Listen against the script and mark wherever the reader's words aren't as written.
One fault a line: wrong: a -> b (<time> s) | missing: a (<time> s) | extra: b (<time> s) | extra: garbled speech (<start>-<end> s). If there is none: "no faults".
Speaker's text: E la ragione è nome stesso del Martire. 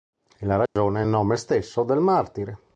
no faults